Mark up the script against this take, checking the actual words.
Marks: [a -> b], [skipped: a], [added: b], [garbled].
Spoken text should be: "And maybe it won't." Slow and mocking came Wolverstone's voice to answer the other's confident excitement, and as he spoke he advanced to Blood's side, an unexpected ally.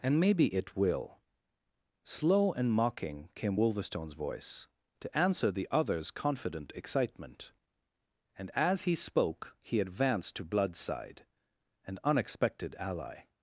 "And maybe it [won't." -> will] Slow and mocking came Wolverstone's voice to answer the other's confident excitement, and as he spoke he advanced to Blood's side, an unexpected ally.